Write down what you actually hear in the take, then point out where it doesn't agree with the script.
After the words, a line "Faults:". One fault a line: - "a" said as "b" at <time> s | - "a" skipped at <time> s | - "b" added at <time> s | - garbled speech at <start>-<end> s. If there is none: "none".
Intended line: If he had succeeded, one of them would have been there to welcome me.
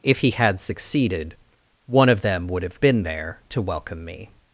If he had succeeded, one of them would have been there to welcome me.
Faults:
none